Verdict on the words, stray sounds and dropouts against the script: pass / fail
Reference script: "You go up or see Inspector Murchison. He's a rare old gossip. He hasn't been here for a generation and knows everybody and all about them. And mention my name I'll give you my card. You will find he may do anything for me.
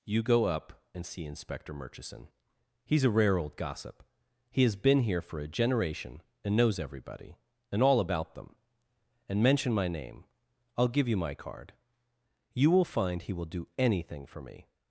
fail